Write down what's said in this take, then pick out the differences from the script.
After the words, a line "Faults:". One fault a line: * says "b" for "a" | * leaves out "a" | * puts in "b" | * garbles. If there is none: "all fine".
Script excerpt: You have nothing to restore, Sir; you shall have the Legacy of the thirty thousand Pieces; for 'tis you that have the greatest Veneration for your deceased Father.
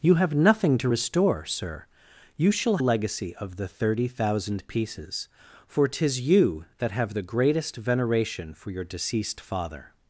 You have nothing to restore, Sir; you shall Legacy of the thirty thousand Pieces; for 'tis you that have the greatest Veneration for your deceased Father.
Faults:
* leaves out "have the"